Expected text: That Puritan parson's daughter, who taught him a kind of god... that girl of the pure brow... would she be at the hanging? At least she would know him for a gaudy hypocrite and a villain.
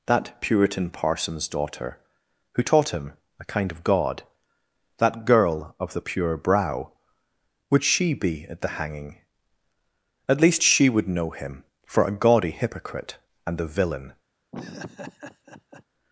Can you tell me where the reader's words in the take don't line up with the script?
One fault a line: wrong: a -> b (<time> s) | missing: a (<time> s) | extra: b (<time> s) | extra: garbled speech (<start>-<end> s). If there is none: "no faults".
no faults